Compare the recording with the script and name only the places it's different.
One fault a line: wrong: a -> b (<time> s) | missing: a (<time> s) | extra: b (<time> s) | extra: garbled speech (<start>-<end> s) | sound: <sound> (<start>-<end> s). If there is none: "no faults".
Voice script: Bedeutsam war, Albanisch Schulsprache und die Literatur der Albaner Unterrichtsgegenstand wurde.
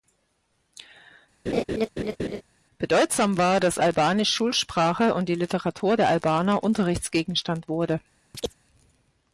sound: laugh (1.5-2.4 s)
extra: dass (3.6 s)
sound: chirp (8.3-8.5 s)